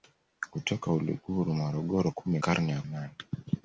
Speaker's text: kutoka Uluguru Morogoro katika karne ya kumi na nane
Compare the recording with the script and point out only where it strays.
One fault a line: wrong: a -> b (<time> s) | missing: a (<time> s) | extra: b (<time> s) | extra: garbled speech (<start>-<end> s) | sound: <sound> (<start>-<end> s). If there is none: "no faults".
wrong: katika -> kumi (2.1 s)
missing: kumi na (2.8 s)